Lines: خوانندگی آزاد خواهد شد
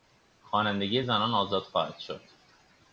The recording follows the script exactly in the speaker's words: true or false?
false